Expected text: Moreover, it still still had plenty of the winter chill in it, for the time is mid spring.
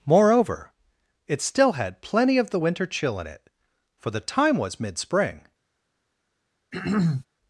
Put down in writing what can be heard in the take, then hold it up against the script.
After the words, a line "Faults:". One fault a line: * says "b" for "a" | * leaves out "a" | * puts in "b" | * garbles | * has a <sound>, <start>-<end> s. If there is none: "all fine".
Moreover, it still had plenty of the winter chill in it, for the time was mid spring.
Faults:
* leaves out "still"
* says "was" for "is"
* has a throat clearing, 6.7-7.3 s